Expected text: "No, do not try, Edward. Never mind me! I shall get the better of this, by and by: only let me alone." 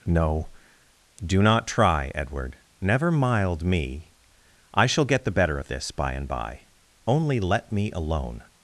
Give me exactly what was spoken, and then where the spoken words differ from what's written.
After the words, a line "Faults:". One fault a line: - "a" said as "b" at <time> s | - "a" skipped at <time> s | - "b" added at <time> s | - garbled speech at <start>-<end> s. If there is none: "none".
"No, do not try, Edward. Never mild me! I shall get the better of this, by and by: only let me alone."
Faults:
- "mind" said as "mild" at 3.1 s